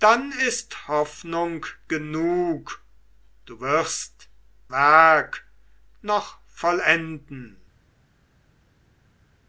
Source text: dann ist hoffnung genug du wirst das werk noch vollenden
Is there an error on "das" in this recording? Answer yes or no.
yes